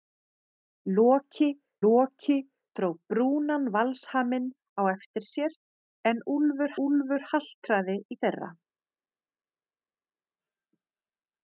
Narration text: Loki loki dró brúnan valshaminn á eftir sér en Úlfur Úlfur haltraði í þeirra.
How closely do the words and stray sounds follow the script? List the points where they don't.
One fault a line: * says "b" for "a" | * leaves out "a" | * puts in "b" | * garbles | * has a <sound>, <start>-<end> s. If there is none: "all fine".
all fine